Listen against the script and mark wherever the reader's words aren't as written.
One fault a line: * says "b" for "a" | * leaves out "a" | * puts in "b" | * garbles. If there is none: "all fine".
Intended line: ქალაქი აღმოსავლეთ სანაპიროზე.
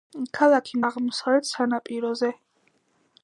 all fine